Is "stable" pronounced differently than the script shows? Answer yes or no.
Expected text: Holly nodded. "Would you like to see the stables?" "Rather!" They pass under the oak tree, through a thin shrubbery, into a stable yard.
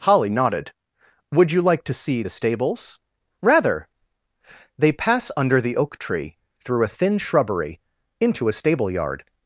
no